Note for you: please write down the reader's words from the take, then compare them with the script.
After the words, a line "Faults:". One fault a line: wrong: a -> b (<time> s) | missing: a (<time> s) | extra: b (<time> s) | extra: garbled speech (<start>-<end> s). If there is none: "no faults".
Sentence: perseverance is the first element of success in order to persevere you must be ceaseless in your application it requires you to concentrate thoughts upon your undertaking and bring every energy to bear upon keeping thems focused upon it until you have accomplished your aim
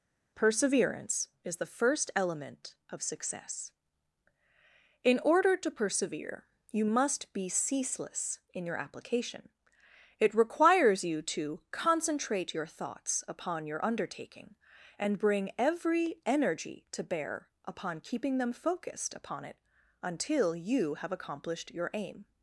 perseverance is the first element of success in order to persevere you must be ceaseless in your application it requires you to concentrate your thoughts upon your undertaking and bring every energy to bear upon keeping them focused upon it until you have accomplished your aim
Faults:
extra: your (12.5 s)
wrong: thems -> them (18.4 s)